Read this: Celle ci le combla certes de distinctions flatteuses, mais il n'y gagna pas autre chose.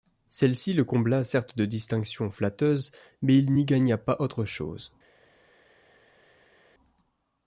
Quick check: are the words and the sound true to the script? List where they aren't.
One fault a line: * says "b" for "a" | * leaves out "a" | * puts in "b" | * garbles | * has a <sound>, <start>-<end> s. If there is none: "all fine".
all fine